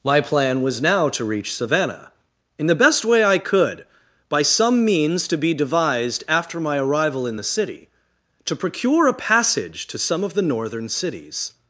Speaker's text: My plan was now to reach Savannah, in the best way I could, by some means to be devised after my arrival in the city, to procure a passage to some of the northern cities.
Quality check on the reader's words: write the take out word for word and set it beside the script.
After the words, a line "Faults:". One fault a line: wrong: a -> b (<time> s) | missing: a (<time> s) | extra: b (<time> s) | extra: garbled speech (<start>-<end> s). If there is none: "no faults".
My plan was now to reach Savannah, in the best way I could, by some means to be devised after my arrival in the city, to procure a passage to some of the northern cities.
Faults:
no faults